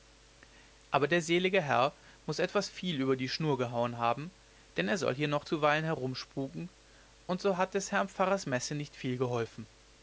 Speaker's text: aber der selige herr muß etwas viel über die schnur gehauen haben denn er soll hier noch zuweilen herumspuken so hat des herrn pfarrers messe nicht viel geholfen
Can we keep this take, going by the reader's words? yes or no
no